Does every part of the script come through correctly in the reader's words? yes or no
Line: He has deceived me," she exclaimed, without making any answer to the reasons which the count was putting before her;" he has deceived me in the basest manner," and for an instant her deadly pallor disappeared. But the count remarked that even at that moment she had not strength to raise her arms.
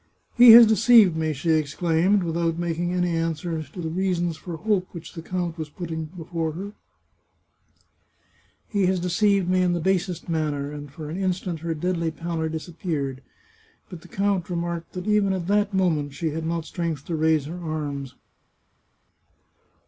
no